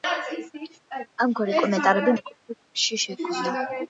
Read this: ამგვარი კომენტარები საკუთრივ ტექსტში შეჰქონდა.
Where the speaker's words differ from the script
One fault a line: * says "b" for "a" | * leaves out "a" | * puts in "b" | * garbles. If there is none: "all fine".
all fine